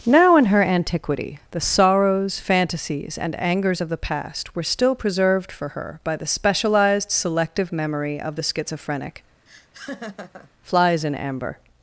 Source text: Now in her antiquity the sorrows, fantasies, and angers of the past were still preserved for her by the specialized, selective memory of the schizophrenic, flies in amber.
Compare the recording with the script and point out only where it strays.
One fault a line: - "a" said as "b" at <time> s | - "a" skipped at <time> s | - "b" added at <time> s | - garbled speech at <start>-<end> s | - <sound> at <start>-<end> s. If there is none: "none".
- laugh at 9.5-10.5 s